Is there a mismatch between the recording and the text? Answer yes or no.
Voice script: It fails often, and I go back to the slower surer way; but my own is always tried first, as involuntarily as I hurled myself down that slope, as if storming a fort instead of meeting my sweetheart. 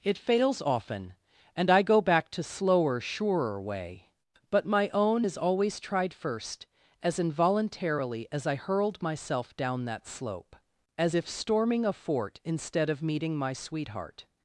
yes